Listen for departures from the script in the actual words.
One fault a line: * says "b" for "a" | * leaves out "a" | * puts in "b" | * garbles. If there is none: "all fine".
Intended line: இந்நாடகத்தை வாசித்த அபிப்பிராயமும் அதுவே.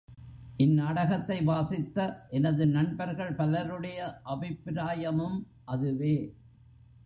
* puts in "எனது நண்பர்கள் பலருடைய"